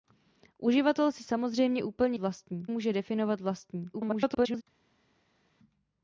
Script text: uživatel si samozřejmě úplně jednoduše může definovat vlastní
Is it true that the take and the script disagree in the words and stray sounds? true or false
true